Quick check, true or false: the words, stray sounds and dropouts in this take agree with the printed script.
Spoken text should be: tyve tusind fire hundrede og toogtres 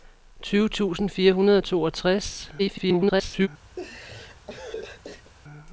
false